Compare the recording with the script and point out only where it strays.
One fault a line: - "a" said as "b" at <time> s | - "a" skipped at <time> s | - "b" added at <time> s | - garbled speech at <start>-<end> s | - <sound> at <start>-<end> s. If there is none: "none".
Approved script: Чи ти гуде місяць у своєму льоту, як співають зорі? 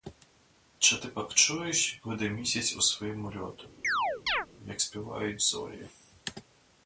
- "пак чуєш як" added at 1.1 s
- chirp at 3.8-4.5 s